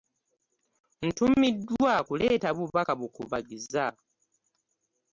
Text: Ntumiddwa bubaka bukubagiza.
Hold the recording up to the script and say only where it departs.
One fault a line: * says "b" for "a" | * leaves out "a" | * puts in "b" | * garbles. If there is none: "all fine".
* puts in "kuleeta"